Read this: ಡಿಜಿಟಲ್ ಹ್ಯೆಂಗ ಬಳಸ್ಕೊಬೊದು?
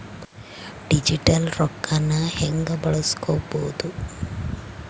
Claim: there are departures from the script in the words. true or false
true